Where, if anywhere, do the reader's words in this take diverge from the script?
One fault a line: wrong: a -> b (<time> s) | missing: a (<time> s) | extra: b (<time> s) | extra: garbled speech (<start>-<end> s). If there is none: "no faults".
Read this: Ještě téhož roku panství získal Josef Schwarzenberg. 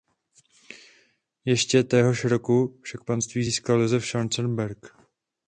extra: však (2.8 s)